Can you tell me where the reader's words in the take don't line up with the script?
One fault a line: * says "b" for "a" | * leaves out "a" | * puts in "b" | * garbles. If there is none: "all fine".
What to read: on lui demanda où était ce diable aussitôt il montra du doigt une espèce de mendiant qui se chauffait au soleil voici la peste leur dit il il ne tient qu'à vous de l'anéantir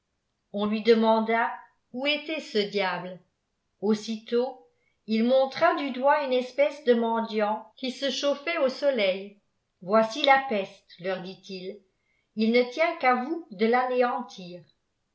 all fine